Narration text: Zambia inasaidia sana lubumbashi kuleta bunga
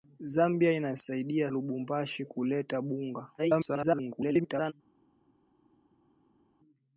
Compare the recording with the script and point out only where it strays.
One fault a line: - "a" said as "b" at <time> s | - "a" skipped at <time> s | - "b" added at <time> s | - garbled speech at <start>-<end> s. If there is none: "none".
- "sana" skipped at 1.5 s
- garbled speech at 3.4-4.7 s